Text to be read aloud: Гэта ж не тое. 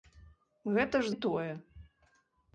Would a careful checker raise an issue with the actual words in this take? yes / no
no